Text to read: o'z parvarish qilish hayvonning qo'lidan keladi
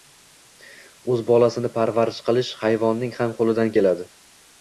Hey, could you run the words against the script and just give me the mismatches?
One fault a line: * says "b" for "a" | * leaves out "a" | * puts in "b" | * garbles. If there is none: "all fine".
* puts in "bolasini"
* puts in "ham"